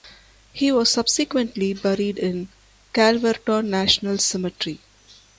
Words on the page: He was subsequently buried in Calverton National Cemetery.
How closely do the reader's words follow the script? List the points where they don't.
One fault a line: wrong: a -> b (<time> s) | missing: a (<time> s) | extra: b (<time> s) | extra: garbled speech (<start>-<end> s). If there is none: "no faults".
no faults